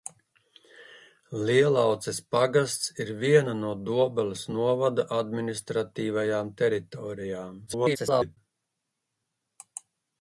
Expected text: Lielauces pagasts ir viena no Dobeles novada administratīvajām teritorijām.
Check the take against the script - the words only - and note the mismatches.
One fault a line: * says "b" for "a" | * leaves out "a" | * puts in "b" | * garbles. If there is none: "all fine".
* garbles